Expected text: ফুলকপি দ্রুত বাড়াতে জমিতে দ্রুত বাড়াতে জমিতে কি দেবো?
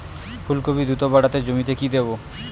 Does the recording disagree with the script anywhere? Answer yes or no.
yes